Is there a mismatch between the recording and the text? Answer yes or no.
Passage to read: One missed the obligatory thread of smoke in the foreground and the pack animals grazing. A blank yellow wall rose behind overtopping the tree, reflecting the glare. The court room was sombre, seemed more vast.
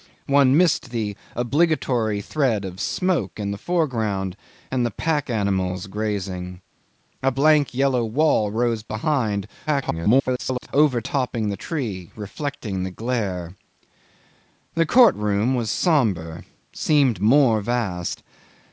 yes